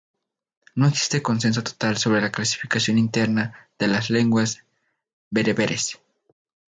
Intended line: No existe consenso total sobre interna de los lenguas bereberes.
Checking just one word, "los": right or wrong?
wrong